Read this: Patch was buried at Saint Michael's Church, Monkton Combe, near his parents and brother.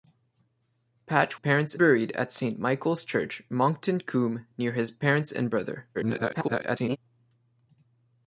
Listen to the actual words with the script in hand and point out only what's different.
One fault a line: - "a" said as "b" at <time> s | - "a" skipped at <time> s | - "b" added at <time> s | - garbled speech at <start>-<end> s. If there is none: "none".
- "was" said as "parents" at 1.3 s
- garbled speech at 5.9-7.0 s